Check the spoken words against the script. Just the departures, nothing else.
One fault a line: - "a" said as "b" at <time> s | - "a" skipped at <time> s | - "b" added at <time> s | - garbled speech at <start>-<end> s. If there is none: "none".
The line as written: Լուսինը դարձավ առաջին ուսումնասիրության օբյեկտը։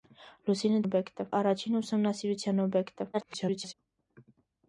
- "դարձավ" said as "օբյեկտը" at 0.8 s
- garbled speech at 3.1-3.7 s